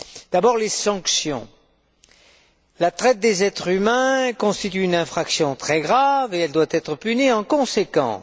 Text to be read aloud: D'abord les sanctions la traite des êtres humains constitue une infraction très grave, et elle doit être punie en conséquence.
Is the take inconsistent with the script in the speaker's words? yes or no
no